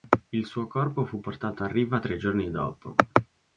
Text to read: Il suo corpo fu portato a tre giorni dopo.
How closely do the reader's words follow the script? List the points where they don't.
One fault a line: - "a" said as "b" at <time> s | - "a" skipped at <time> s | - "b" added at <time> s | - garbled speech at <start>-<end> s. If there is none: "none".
- "riva" added at 1.7 s